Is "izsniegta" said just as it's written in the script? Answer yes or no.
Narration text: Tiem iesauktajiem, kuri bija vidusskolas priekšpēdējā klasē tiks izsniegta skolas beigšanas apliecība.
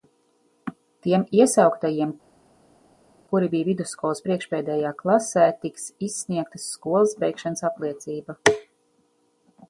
yes